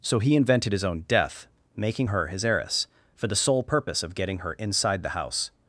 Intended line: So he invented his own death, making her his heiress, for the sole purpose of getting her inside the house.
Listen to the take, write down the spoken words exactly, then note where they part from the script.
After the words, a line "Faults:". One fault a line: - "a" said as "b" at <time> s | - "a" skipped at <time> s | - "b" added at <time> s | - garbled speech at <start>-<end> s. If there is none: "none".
So he invented his own death, making her his heiress, for the sole purpose of getting her inside the house.
Faults:
none